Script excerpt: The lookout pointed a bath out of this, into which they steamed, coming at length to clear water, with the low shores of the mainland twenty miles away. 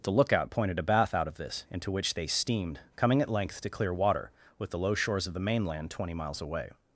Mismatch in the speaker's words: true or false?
false